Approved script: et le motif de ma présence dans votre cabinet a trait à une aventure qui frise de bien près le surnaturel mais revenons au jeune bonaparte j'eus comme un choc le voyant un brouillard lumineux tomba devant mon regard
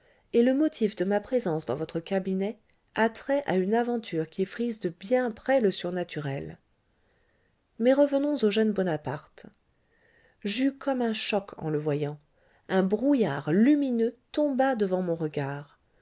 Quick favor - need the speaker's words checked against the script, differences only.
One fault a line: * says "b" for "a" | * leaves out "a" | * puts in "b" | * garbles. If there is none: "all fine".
* puts in "en"